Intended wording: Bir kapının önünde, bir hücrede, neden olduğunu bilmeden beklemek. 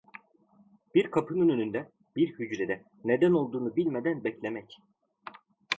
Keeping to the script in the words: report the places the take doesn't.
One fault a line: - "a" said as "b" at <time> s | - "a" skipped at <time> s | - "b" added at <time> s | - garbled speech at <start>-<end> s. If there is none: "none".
none